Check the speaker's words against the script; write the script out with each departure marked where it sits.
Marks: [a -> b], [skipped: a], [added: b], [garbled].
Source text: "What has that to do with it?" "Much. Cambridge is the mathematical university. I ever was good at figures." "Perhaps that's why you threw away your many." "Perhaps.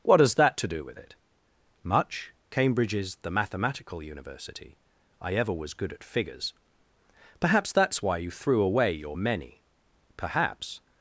"What has that to do with it?" "Much. Cambridge is the mathematical university. I ever was good at figures." "Perhaps that's why you threw away your many." "Perhaps.